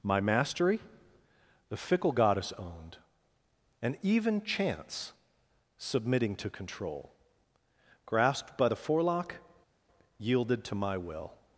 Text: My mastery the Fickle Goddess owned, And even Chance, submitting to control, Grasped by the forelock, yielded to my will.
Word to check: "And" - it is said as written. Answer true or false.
true